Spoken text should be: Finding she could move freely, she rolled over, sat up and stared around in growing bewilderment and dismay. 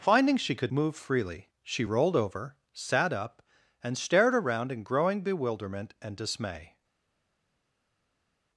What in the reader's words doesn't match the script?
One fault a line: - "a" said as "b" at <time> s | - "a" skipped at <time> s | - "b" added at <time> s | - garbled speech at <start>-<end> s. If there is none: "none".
none